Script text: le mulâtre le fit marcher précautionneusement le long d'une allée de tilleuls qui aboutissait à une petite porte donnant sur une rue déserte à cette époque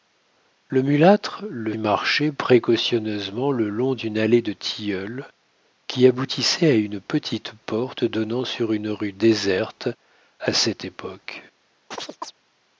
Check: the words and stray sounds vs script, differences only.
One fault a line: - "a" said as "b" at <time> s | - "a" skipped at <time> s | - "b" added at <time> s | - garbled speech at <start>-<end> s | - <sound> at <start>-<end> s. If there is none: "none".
- "fit" skipped at 1.7 s
- chirp at 11.9-12.3 s